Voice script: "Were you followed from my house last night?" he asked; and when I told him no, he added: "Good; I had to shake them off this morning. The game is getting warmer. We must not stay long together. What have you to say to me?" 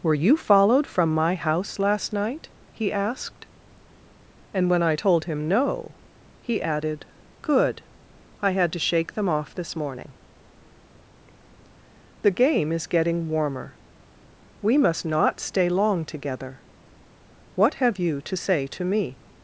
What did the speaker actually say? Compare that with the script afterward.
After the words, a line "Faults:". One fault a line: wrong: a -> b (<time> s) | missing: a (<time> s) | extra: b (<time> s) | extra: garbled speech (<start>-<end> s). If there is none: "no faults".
"Were you followed from my house last night?" he asked; and when I told him no, he added: "Good; I had to shake them off this morning. The game is getting warmer. We must not stay long together. What have you to say to me?"
Faults:
no faults